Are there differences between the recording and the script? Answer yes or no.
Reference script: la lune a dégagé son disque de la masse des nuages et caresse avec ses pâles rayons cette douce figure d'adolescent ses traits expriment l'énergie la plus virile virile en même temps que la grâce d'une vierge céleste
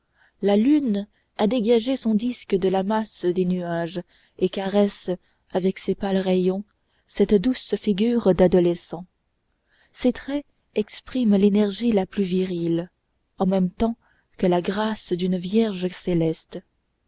yes